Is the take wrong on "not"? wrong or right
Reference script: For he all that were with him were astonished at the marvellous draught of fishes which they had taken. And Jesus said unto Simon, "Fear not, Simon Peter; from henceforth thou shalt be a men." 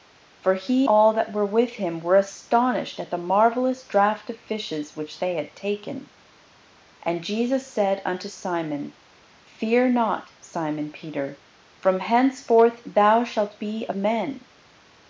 right